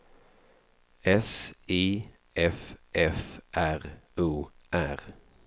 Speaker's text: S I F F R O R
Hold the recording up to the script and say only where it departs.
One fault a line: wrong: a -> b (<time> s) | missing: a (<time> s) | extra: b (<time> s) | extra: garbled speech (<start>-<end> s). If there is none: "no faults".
no faults